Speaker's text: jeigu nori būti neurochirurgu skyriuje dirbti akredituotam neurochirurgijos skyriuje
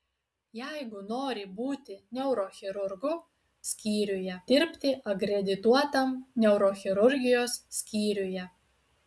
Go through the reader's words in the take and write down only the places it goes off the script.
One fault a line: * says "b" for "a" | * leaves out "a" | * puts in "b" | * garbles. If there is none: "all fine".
all fine